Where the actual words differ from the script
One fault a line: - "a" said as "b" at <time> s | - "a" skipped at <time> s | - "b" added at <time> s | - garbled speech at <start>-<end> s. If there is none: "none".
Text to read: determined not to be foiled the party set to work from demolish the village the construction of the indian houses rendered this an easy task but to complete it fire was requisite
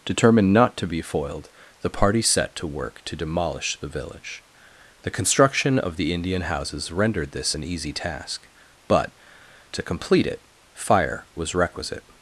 - "from" said as "to" at 3.0 s